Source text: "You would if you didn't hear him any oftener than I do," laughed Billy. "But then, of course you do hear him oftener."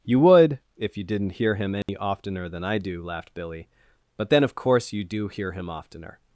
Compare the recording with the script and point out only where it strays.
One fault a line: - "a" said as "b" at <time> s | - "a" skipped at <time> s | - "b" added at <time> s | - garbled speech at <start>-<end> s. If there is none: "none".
none